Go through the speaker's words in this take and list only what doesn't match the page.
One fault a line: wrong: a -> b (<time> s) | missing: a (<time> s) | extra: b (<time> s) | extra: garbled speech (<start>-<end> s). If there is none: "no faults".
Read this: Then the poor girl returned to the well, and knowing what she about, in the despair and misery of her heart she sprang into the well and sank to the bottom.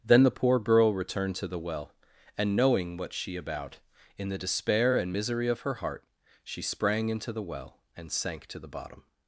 no faults